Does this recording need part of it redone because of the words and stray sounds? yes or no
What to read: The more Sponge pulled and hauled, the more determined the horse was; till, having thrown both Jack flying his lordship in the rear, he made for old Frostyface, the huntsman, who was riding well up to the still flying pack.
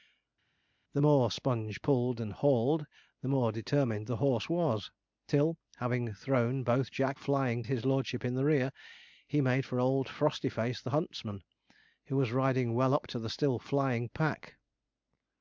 no